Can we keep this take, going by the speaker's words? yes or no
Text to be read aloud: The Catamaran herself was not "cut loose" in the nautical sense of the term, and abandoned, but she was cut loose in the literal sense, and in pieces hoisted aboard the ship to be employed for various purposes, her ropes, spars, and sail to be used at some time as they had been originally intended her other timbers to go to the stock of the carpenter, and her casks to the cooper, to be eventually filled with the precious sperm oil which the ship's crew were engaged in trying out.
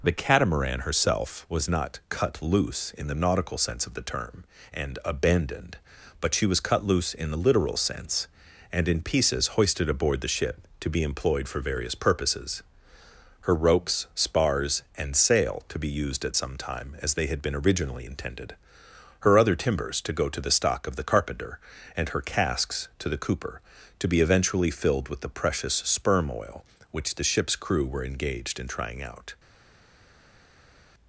yes